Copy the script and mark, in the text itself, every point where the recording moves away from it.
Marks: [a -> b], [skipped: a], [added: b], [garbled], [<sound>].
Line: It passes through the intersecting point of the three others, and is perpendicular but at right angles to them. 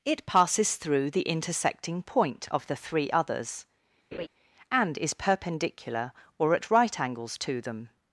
It passes through the intersecting point of the three others, [laugh] and is perpendicular [but -> or] at right angles to them.